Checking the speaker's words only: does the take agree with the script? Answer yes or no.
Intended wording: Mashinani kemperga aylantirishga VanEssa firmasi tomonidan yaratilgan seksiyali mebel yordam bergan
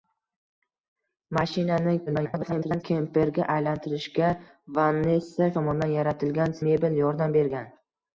no